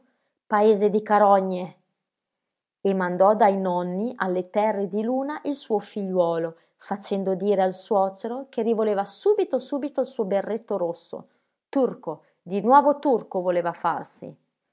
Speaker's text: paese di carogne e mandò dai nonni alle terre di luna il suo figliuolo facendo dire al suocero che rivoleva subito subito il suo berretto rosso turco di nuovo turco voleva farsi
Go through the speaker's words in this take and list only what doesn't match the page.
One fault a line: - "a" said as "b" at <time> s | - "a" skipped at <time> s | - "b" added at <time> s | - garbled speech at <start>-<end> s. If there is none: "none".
none